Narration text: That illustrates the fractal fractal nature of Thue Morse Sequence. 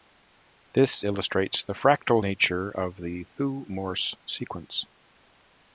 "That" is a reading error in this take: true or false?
true